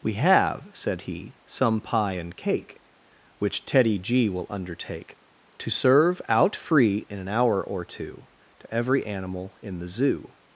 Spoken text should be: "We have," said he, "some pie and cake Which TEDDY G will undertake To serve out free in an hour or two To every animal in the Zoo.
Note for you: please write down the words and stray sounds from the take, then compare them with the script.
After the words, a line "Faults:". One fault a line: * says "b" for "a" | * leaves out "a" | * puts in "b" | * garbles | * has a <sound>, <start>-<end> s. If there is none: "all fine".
"We have," said he, "some pie and cake Which TEDDY G will undertake To serve out free in an hour or two To every animal in the Zoo.
Faults:
all fine